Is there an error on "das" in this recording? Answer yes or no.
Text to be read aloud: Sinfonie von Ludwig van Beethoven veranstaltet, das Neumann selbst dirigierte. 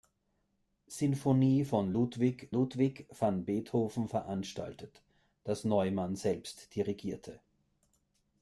no